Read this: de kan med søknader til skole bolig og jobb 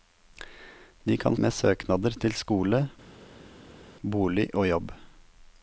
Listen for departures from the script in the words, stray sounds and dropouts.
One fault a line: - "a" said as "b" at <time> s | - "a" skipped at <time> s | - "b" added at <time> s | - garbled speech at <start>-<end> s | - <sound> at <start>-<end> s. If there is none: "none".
none